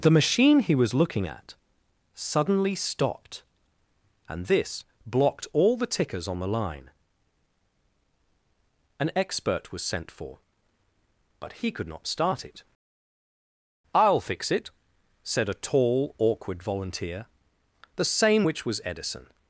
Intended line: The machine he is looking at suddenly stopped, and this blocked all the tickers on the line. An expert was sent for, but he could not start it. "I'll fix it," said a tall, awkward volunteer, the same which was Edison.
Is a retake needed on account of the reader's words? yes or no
yes